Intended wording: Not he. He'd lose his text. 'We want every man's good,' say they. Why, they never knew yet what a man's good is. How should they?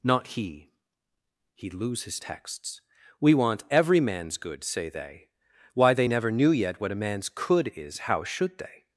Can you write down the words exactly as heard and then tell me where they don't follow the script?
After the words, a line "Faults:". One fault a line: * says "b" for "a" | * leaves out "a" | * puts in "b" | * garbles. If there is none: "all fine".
Not he. He'd lose his texts. 'We want every man's good,' say they. Why, they never knew yet what a man's could is. How should they?
Faults:
* says "texts" for "text"
* says "could" for "good"